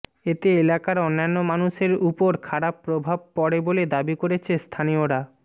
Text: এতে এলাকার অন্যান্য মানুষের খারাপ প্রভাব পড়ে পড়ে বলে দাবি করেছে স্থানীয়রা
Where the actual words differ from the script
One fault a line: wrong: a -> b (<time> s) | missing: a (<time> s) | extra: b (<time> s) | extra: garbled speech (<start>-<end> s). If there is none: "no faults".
extra: উপর (2.1 s)
missing: পড়ে (3.6 s)